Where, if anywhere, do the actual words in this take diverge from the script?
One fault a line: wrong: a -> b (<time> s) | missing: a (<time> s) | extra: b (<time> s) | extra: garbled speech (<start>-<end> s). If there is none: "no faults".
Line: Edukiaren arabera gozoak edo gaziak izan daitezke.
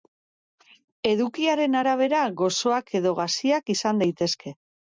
no faults